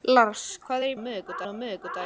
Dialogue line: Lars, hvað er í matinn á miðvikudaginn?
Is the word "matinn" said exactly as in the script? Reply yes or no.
no